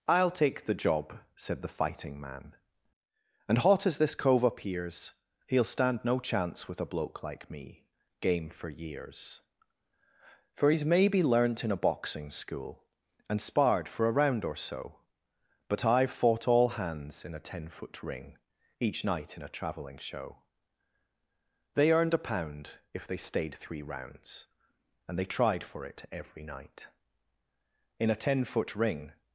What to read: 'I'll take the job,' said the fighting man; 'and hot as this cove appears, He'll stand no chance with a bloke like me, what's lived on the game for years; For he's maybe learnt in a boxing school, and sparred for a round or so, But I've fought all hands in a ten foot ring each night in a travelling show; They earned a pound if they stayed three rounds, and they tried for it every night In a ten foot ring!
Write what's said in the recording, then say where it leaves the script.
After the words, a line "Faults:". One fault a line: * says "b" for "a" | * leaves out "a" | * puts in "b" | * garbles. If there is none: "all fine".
'I'll take the job,' said the fighting man; 'and hot as this cove appears, He'll stand no chance with a bloke like me, game for years; For he's maybe learnt in a boxing school, and sparred for a round or so, But I've fought all hands in a ten foot ring each night in a travelling show; They earned a pound if they stayed three rounds, and they tried for it every night In a ten foot ring!
Faults:
* leaves out "what's lived on the"